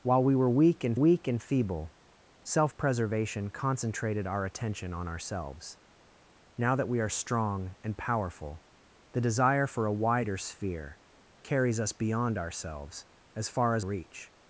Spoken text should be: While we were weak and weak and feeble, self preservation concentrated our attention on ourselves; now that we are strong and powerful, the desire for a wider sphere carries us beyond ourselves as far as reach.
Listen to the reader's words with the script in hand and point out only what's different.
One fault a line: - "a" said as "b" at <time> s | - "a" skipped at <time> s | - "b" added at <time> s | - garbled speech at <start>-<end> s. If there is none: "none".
none